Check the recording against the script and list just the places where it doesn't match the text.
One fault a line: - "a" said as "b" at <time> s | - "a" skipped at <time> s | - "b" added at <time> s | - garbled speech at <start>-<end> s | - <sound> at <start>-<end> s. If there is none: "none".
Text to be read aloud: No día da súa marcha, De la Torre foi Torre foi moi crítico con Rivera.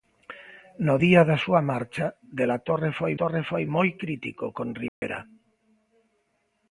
- dropout at 4.9-5.0 s